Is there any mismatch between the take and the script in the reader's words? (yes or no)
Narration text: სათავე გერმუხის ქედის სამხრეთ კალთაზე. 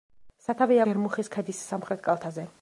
no